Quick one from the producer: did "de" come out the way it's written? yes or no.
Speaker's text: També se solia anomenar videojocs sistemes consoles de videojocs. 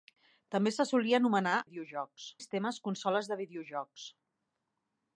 yes